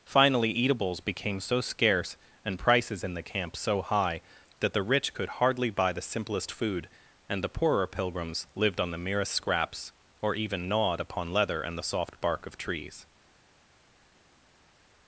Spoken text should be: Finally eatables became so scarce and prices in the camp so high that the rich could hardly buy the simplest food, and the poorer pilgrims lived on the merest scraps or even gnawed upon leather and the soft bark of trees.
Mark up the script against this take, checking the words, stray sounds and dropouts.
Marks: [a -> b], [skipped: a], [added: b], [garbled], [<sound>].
Finally eatables became so scarce and prices in the camp so high that the rich could hardly buy the simplest food, and the poorer pilgrims lived on the merest scraps or even gnawed upon leather and the soft bark of trees.